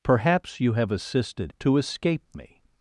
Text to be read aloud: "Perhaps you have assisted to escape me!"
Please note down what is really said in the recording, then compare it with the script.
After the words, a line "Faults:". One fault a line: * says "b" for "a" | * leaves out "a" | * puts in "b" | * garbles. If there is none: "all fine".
"Perhaps you have assisted to escape me!"
Faults:
all fine